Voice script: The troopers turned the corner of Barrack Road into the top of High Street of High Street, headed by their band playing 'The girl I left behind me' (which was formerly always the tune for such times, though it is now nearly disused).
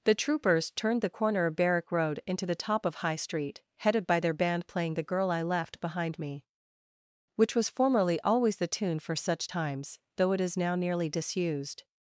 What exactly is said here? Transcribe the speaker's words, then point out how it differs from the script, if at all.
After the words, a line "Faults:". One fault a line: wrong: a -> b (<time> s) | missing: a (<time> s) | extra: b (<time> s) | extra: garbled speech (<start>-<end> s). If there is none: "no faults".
The troopers turned the corner of Barrack Road into the top of High Street, headed by their band playing 'The girl I left behind me' (which was formerly always the tune for such times, though it is now nearly disused).
Faults:
missing: of High Street (3.6 s)